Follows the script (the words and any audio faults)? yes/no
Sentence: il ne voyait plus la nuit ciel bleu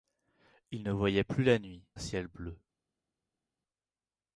yes